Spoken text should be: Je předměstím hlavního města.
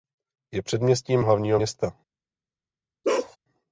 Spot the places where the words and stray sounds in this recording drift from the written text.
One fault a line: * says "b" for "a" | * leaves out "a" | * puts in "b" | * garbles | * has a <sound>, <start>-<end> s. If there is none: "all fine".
* has a bark, 3.0-3.4 s